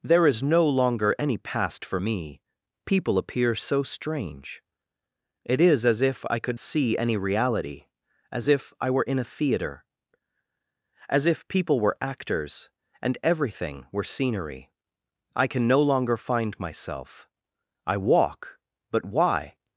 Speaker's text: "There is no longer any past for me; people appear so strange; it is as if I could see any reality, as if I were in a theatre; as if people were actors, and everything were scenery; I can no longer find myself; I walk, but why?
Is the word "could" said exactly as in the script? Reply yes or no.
yes